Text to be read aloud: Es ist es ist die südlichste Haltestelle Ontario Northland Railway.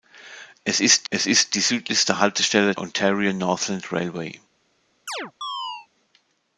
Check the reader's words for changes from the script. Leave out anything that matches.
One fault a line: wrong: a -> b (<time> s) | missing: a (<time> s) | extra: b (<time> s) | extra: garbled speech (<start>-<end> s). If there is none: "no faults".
no faults